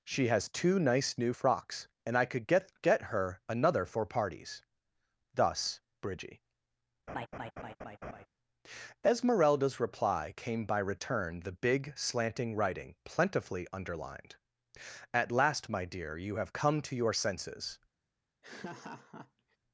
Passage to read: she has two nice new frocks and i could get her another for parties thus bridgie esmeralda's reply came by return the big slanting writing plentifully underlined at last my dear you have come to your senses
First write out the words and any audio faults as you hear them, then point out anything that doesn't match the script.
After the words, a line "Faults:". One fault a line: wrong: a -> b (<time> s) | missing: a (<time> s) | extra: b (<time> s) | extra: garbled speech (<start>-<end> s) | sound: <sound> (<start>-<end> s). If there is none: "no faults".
she has two nice new frocks and i could get get her another for parties thus bridgie esmeralda's reply came by return the big slanting writing plentifully underlined at last my dear you have come to your senses
Faults:
extra: get (2.8 s)
sound: laugh (7.1-8.3 s)
sound: laugh (18.4-19.6 s)